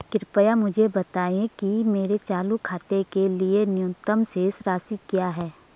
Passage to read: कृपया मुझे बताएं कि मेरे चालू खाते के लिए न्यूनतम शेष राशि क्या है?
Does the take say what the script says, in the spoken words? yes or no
yes